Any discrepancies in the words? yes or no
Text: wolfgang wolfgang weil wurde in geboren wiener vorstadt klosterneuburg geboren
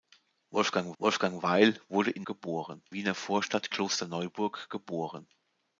no